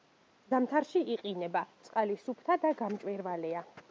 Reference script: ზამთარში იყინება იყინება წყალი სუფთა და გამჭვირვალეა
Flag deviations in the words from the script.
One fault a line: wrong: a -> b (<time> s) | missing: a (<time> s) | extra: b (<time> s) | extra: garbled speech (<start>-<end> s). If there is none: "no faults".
missing: იყინება (1.6 s)